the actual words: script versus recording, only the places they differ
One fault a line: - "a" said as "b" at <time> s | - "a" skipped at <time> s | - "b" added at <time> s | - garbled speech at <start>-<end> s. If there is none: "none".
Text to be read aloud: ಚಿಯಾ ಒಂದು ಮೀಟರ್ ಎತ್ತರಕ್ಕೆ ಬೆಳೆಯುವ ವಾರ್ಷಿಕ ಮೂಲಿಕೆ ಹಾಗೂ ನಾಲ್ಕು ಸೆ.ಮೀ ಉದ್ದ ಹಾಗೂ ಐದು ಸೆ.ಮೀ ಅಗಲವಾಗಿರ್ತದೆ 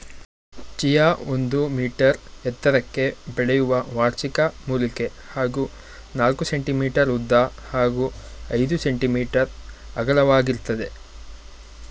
none